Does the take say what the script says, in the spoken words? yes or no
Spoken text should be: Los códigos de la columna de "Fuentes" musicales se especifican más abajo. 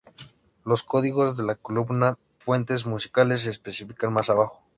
no